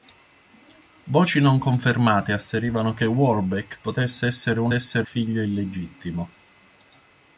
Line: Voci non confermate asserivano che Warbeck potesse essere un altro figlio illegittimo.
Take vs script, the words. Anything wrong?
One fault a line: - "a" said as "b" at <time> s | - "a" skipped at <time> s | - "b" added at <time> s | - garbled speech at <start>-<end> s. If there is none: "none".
- "altro" said as "essere" at 4.7 s